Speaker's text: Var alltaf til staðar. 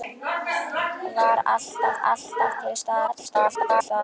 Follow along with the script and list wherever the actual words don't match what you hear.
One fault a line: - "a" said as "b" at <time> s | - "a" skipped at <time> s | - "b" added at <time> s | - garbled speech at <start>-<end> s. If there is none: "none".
- "alltaf" added at 2.1 s
- garbled speech at 3.1-4.0 s